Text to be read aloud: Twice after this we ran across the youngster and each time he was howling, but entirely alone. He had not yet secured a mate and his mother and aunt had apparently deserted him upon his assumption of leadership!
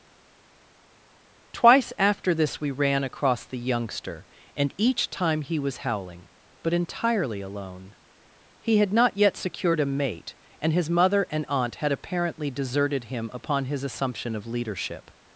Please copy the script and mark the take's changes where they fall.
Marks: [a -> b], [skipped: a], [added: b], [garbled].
Twice after this we ran across the youngster and each time he was howling, but entirely alone. He had not yet secured a mate and his mother and aunt had apparently deserted him upon his assumption of leadership!